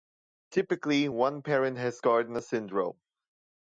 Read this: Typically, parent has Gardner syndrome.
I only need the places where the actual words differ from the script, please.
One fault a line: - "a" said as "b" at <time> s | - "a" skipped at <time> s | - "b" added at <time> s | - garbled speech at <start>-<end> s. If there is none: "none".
- "one" added at 1.1 s